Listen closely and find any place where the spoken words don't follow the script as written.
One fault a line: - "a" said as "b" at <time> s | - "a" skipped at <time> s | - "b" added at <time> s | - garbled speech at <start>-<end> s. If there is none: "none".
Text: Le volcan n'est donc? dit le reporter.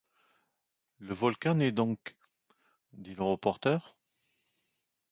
none